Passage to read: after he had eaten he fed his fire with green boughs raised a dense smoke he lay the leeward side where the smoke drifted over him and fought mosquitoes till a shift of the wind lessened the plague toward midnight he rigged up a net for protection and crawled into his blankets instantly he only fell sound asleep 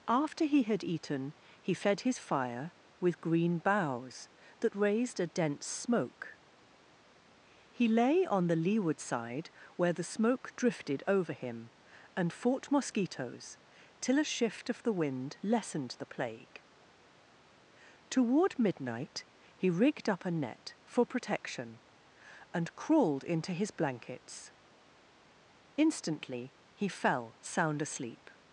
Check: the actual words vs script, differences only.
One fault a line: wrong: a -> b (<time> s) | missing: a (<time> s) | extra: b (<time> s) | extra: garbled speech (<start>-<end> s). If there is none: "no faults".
extra: that (4.6 s)
extra: on (8.2 s)
missing: only (26.9 s)